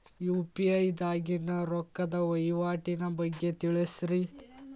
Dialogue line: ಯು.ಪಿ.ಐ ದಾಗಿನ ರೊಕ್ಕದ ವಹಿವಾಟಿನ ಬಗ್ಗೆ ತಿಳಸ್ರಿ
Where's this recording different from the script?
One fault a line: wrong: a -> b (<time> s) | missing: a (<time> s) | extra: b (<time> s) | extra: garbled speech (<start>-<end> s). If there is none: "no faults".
no faults